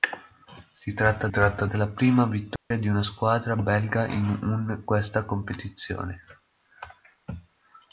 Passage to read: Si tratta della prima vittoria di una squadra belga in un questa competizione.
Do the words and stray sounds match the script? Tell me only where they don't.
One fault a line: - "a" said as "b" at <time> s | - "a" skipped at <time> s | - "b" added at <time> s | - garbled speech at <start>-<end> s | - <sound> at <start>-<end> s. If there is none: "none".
- "tratta" added at 1.3 s
- dropout at 2.6-2.7 s